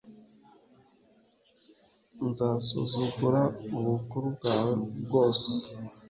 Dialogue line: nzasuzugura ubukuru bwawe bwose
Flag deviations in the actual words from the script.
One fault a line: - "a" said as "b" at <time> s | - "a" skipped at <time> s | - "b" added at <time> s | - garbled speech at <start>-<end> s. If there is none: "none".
none